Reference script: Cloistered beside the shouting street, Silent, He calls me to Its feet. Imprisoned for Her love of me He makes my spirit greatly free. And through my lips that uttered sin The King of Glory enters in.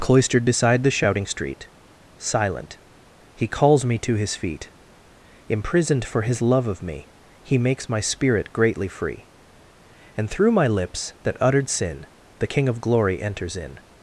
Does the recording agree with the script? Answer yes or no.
no